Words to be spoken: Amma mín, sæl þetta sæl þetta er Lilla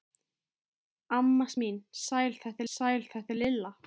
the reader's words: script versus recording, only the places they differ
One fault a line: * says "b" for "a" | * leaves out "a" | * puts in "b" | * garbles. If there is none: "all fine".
all fine